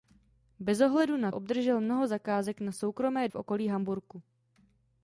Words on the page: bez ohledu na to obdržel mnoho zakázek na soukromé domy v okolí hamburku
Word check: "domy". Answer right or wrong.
wrong